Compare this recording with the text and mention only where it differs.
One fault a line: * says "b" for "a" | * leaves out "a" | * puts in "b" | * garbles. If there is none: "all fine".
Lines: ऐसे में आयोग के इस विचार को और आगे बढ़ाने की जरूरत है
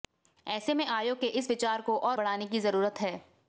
* leaves out "आगे"